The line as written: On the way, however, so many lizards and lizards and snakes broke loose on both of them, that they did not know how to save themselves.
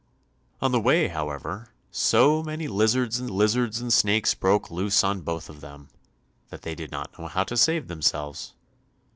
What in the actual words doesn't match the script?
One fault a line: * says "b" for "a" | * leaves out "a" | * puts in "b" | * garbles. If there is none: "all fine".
all fine